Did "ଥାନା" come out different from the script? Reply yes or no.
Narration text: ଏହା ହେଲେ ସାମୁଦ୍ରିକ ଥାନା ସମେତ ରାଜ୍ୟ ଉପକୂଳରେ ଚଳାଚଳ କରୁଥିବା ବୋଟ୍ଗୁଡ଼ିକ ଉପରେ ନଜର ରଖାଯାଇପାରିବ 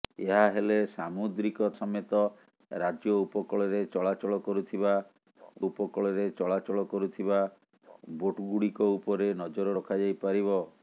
yes